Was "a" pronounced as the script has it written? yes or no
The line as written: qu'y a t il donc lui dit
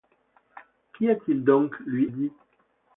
yes